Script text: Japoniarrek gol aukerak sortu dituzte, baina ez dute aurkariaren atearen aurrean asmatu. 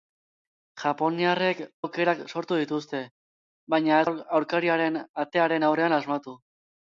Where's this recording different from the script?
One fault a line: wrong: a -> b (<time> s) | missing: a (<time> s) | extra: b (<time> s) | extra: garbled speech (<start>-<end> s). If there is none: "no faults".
missing: gol (1.6 s)
missing: dute (4.1 s)